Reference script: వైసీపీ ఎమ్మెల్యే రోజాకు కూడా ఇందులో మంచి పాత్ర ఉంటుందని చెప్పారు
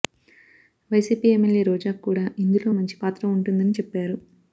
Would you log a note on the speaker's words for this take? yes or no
no